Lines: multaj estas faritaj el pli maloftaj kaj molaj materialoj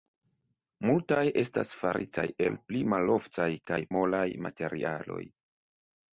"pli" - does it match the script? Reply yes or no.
yes